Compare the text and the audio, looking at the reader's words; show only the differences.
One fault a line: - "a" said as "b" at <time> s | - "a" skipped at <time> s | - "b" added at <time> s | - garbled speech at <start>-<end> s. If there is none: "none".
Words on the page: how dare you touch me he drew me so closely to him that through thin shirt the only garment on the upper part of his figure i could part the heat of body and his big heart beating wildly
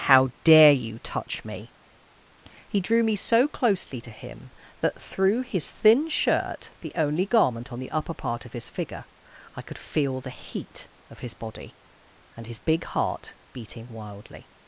- "his" added at 5.4 s
- "part" said as "feel" at 9.8 s
- "his" added at 11.2 s